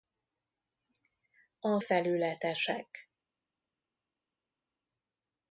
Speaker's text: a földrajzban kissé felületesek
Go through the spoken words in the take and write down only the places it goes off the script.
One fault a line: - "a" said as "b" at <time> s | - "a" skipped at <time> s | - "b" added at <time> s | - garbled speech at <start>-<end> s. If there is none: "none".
- "földrajzban kissé" skipped at 1.8 s